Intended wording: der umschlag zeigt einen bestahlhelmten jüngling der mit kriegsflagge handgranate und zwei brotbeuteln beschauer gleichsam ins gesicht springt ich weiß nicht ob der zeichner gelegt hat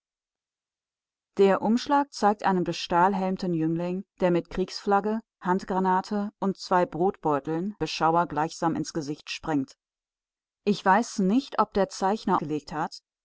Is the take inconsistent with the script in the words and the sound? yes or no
no